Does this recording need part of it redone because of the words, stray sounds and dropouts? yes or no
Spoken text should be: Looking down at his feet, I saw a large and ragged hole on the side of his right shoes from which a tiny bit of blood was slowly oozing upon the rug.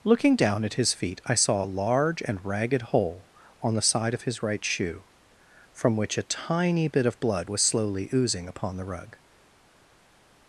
yes